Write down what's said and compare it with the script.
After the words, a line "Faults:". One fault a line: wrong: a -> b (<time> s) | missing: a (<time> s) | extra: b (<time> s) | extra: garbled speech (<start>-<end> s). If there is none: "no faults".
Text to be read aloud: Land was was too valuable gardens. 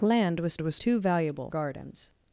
Land was was too valuable gardens.
Faults:
no faults